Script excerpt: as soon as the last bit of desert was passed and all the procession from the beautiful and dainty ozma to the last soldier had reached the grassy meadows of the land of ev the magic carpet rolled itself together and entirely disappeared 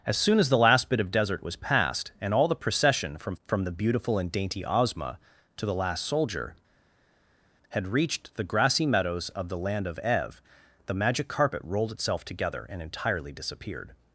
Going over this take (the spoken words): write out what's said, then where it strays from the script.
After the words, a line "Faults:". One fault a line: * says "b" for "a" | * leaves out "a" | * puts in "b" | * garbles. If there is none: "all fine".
as soon as the last bit of desert was passed and all the procession from from the beautiful and dainty ozma to the last soldier had reached the grassy meadows of the land of ev the magic carpet rolled itself together and entirely disappeared
Faults:
* puts in "from"